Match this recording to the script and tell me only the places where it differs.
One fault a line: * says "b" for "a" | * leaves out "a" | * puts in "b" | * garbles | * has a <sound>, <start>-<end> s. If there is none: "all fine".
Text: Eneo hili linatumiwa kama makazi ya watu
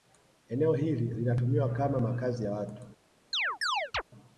* has a chirp, 3.3-4.0 s